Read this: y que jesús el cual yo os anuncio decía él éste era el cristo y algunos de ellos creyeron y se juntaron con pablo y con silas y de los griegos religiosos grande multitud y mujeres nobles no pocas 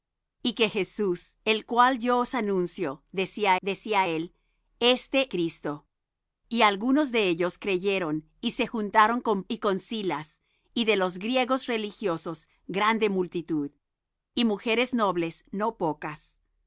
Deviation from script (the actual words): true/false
true